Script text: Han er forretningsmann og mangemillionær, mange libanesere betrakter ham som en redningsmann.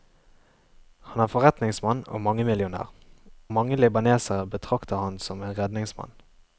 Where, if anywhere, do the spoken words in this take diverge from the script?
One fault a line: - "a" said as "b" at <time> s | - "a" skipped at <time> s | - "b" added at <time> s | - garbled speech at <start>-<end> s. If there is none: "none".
none